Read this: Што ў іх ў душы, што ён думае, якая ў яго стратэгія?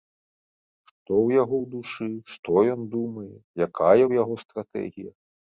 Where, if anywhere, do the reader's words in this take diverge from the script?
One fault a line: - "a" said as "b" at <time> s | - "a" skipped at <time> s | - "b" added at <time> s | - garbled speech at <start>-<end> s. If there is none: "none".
- "іх" said as "яго" at 1.4 s